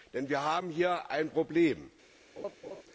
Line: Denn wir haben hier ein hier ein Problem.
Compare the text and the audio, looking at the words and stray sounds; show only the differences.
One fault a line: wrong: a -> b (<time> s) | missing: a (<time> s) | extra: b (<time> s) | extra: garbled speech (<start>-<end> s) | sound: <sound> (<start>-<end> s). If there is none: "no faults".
missing: hier ein (1.3 s)
sound: laugh (2.4-2.8 s)